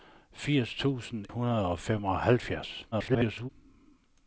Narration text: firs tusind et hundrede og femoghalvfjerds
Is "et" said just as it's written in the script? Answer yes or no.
no